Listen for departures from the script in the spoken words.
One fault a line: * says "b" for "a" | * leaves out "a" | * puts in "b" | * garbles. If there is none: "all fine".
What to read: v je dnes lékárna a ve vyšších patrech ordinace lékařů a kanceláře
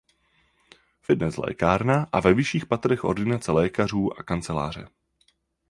all fine